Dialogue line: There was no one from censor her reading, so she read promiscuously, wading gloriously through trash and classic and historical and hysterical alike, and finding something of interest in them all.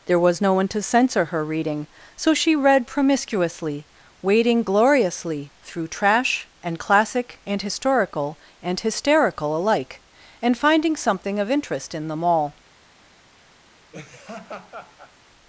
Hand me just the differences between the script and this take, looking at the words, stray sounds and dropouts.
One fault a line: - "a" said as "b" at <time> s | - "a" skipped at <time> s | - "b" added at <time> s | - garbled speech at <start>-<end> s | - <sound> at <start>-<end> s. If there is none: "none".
- "from" said as "to" at 0.7 s
- laugh at 13.9-15.1 s